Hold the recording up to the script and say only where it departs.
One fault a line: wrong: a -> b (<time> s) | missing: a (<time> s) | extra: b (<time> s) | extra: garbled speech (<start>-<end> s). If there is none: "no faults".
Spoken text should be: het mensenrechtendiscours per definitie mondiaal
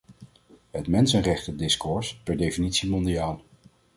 no faults